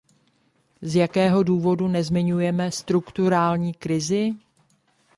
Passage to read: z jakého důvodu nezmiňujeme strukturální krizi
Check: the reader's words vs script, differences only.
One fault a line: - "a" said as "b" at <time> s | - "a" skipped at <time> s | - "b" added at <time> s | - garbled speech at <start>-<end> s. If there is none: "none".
none